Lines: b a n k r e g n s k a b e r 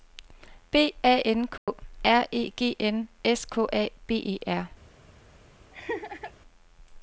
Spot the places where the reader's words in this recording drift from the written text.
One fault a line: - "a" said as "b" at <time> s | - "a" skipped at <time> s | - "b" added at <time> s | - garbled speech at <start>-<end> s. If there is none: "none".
none